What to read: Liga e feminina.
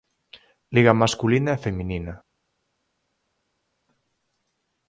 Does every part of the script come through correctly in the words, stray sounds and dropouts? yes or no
no